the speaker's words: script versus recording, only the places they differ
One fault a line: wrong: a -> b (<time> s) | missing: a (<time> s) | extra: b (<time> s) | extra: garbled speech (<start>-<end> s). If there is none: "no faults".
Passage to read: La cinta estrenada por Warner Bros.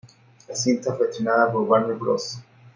extra: fue (0.9 s)